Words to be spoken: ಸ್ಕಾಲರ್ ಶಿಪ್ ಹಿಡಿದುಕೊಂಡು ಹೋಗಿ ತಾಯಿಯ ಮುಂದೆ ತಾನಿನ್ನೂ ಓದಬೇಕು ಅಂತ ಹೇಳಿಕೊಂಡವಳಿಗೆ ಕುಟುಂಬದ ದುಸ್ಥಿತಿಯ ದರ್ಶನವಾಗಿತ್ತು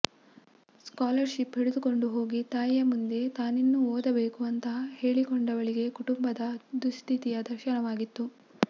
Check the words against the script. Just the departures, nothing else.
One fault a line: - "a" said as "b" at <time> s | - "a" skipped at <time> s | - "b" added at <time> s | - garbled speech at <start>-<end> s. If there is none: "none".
none